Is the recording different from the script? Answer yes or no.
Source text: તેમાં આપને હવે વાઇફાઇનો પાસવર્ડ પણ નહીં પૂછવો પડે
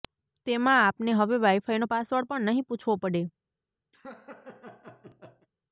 no